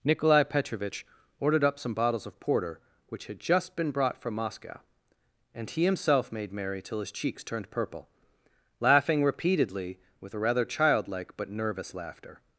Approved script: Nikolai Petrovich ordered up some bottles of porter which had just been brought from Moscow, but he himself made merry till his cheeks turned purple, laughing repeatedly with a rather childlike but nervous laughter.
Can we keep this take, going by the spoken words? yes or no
no